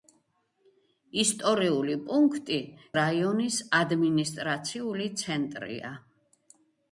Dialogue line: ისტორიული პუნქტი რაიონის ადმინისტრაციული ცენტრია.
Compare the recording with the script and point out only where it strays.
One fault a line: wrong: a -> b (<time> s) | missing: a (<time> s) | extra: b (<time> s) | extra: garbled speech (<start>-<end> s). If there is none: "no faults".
no faults